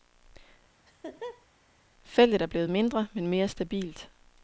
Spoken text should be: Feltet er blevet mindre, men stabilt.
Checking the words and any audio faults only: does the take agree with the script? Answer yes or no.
no